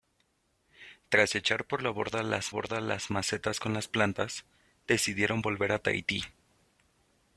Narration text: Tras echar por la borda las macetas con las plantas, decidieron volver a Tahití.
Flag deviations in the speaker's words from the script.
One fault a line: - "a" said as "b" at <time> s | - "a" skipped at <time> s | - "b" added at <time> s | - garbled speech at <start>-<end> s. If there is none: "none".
- "borda las" added at 2.5 s